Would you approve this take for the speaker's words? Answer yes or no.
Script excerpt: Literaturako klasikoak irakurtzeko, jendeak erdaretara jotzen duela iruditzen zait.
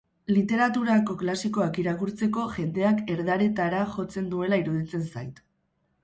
yes